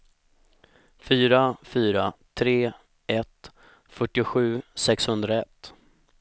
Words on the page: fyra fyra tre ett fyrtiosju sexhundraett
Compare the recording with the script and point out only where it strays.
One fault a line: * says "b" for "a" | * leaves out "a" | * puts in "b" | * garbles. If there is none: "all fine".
all fine